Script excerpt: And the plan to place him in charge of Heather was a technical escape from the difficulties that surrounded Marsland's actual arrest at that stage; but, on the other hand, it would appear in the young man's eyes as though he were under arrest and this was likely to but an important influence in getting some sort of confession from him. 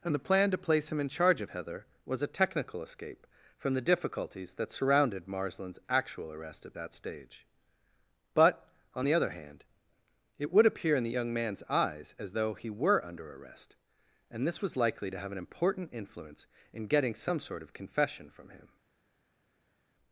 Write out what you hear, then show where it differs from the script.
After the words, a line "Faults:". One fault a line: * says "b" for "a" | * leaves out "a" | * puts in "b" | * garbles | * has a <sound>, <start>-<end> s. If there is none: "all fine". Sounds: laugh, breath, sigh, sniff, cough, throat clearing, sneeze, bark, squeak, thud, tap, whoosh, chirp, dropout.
And the plan to place him in charge of Heather was a technical escape from the difficulties that surrounded Marsland's actual arrest at that stage; but, on the other hand, it would appear in the young man's eyes as though he were under arrest and this was likely to have an important influence in getting some sort of confession from him.
Faults:
* says "have" for "but"